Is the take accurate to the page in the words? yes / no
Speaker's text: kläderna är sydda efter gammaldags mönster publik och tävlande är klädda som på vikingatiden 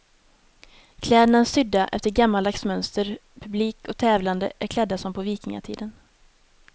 yes